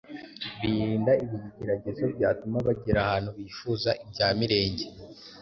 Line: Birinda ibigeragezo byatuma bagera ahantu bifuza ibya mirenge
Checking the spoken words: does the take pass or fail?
pass